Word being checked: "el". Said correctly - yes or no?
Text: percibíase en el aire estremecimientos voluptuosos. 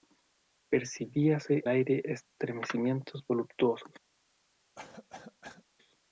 no